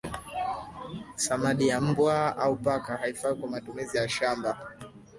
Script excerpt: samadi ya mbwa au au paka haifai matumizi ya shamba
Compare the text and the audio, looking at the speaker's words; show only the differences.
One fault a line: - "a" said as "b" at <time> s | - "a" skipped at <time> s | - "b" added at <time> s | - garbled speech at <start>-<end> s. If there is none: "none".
- "au" skipped at 2.6 s
- "kwa" added at 3.4 s